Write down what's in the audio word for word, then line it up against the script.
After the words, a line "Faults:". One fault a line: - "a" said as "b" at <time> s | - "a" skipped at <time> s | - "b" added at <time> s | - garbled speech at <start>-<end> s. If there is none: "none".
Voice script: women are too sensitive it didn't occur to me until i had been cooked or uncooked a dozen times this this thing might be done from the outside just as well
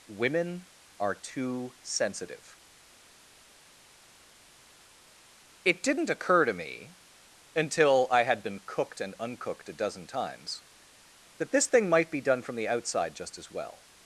women are too sensitive it didn't occur to me until i had been cooked and uncooked a dozen times that this thing might be done from the outside just as well
Faults:
- "or" said as "and" at 9.0 s
- "this" said as "that" at 11.4 s